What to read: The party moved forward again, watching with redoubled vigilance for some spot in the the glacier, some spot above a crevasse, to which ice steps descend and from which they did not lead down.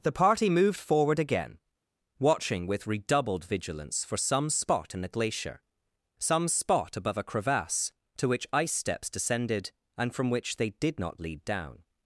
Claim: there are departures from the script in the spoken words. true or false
true